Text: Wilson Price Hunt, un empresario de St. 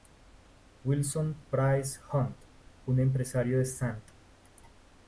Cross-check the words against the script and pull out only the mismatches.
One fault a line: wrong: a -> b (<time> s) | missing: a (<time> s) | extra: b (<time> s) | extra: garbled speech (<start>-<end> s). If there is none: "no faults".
no faults